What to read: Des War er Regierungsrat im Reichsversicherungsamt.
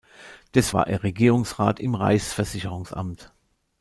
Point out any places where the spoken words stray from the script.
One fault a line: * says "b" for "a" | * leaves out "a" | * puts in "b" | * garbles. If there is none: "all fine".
all fine